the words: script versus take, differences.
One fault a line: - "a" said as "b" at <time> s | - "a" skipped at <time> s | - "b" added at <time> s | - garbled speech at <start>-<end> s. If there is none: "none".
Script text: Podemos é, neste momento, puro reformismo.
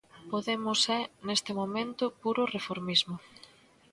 none